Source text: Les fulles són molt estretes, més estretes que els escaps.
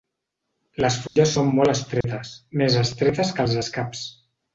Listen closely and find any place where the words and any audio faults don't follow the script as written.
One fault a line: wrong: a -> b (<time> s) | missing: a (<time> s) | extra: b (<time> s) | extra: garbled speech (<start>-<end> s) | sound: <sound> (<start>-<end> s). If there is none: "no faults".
sound: dropout (1.1-1.2 s)
sound: dropout (2.0-2.0 s)